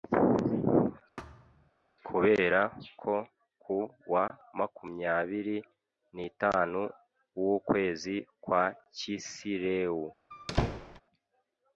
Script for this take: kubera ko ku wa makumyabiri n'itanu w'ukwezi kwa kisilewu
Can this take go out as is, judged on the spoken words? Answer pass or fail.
pass